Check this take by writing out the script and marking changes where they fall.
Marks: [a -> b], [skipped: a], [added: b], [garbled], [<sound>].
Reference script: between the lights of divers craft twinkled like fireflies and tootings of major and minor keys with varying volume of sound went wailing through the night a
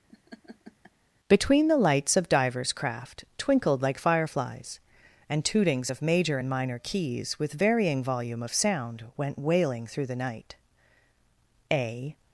[laugh] between the lights of divers craft twinkled like fireflies and tootings of major and minor keys with varying volume of sound went wailing through the night a